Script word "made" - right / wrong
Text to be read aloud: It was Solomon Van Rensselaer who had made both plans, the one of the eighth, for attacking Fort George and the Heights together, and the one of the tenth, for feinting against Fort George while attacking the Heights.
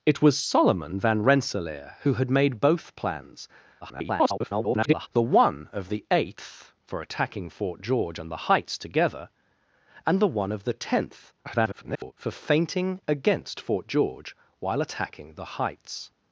right